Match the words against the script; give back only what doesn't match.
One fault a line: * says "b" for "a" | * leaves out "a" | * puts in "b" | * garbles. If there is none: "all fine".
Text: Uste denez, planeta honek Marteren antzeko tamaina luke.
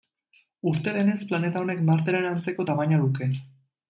all fine